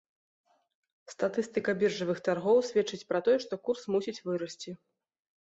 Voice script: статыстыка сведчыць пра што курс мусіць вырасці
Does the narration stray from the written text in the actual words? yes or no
yes